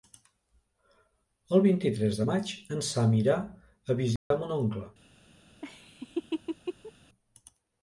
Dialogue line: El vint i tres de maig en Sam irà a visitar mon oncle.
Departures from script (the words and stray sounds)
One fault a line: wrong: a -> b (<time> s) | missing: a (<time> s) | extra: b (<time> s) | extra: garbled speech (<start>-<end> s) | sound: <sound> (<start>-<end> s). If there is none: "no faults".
sound: dropout (4.2-4.3 s)
sound: laugh (5.6-6.9 s)